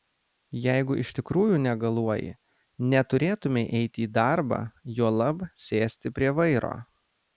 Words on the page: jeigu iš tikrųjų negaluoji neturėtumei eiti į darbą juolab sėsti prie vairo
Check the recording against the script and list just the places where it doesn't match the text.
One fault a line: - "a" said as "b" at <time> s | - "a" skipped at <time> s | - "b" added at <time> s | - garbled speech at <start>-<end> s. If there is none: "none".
none